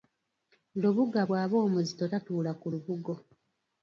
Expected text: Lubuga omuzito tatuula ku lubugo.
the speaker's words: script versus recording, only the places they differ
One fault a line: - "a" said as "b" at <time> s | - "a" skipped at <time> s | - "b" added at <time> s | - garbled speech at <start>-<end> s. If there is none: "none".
- "bwaba" added at 1.3 s